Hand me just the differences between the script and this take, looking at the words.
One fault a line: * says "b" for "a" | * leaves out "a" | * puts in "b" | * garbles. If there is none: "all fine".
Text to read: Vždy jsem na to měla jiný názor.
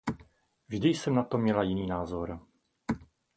all fine